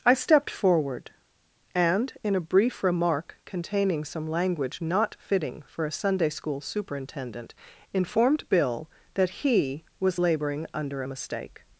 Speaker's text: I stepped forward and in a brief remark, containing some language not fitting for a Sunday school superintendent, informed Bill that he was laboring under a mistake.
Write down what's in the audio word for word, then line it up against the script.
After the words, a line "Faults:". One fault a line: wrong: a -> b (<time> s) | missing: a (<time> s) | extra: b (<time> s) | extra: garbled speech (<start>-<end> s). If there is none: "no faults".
I stepped forward and in a brief remark, containing some language not fitting for a Sunday school superintendent, informed Bill that he was laboring under a mistake.
Faults:
no faults